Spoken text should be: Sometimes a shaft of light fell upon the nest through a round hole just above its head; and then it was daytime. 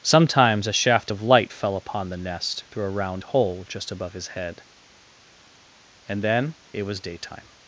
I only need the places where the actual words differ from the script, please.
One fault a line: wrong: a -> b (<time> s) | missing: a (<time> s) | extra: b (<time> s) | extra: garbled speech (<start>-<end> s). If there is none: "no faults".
wrong: its -> his (4.1 s)